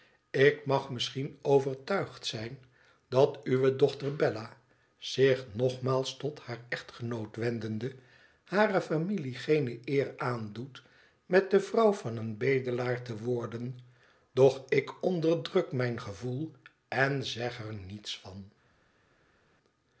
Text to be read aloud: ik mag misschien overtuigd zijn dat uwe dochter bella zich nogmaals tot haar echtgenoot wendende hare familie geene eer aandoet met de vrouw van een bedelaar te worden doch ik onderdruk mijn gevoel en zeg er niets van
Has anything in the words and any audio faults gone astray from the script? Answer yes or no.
no